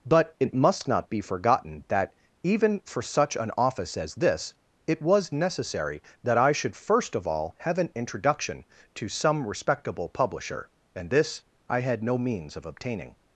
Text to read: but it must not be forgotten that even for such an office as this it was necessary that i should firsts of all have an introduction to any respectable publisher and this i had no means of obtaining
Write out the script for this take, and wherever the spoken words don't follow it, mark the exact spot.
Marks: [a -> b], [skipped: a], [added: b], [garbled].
but it must not be forgotten that even for such an office as this it was necessary that i should [firsts -> first] of all have an introduction to [any -> some] respectable publisher and this i had no means of obtaining